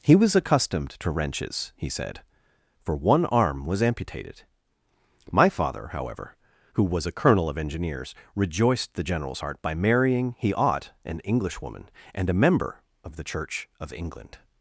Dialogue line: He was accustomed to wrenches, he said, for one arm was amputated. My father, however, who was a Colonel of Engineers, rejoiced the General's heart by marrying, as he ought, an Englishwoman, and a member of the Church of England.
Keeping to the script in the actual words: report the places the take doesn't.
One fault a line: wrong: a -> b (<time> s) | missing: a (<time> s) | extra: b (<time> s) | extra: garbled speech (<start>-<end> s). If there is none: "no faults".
missing: as (10.3 s)